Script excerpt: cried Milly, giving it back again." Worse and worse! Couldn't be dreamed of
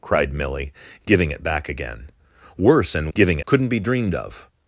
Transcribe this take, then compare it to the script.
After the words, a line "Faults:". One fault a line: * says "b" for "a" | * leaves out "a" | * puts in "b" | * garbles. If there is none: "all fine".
cried Milly, giving it back again." Worse and giving! Couldn't be dreamed of
Faults:
* says "giving" for "worse"